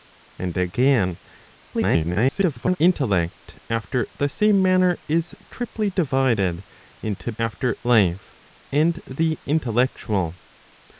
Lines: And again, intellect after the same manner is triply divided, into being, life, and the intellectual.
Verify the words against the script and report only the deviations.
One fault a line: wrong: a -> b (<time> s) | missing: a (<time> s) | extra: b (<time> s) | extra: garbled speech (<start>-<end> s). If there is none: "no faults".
extra: garbled speech (1.7-2.8 s)
wrong: being -> after (7.4 s)